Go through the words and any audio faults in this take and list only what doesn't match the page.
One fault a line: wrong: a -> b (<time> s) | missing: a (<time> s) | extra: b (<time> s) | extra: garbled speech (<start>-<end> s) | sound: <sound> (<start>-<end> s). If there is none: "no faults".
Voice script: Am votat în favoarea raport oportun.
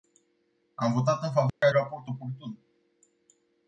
sound: dropout (1.5-1.6 s)